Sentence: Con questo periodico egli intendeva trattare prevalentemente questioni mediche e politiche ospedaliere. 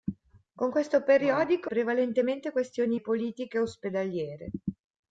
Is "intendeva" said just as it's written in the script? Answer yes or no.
no